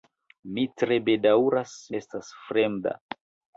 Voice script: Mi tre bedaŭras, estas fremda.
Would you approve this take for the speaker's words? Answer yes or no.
yes